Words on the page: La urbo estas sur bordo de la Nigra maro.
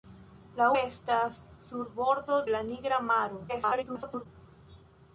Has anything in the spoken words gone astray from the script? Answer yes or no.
yes